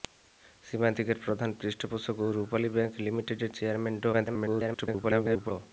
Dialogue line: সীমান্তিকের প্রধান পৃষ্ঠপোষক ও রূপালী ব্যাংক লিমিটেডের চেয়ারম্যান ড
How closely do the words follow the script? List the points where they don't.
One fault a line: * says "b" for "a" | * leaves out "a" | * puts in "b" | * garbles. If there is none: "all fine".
* garbles